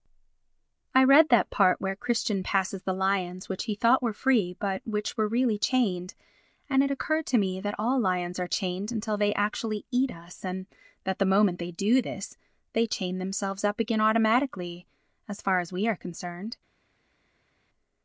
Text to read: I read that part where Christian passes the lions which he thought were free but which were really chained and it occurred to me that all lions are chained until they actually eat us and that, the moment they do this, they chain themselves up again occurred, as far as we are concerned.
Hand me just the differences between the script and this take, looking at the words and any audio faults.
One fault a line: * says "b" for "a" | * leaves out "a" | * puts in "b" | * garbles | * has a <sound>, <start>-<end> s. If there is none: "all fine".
* says "automatically" for "occurred"